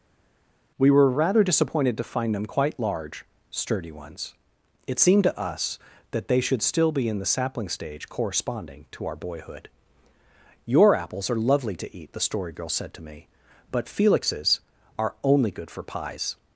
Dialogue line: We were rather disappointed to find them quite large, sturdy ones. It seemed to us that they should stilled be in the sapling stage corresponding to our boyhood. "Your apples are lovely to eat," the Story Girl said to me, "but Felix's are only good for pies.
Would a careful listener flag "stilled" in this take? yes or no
yes